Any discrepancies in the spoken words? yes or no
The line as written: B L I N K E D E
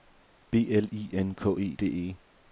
no